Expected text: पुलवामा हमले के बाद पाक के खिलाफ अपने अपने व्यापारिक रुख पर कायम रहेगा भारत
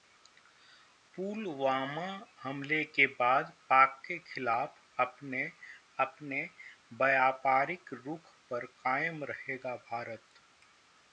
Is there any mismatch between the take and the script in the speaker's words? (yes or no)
no